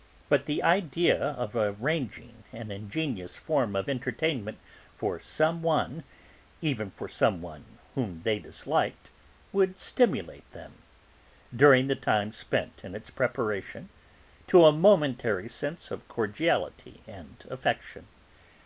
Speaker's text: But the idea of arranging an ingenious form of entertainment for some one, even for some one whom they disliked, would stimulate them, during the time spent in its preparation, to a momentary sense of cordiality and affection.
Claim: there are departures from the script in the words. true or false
false